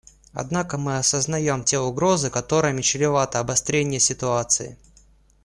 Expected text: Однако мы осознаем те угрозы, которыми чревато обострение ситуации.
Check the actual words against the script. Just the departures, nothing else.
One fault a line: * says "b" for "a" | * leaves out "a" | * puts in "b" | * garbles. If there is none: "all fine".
all fine